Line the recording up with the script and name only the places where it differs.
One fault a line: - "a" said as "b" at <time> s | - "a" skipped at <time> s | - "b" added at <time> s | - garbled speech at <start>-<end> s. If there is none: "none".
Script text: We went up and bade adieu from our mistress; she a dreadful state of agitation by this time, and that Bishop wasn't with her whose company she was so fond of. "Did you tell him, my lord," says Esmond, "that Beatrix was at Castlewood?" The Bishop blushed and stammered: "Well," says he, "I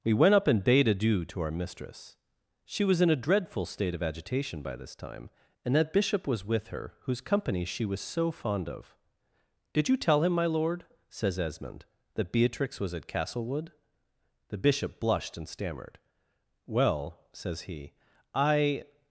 - "from" said as "to" at 1.2 s
- "was in" added at 2.8 s
- "wasn't" said as "was" at 6.3 s